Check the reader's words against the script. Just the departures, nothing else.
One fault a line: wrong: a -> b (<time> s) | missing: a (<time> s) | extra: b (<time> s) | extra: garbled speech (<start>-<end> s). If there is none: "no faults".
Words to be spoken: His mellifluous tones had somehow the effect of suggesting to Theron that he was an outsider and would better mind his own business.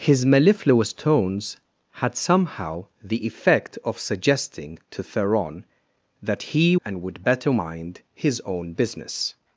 missing: was an outsider (6.8 s)